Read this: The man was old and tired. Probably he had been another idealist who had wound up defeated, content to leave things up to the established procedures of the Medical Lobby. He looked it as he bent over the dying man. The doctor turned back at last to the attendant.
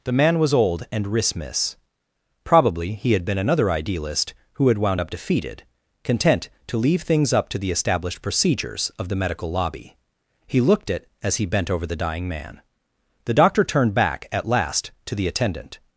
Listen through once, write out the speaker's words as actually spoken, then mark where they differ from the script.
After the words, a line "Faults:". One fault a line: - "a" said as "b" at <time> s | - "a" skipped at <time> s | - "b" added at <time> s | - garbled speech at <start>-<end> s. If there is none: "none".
The man was old and rismus. Probably he had been another idealist who had wound up defeated, content to leave things up to the established procedures of the Medical Lobby. He looked it as he bent over the dying man. The doctor turned back at last to the attendant.
Faults:
- "tired" said as "rismus" at 1.1 s